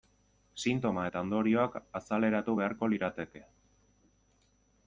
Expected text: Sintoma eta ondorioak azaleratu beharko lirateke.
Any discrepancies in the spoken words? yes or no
no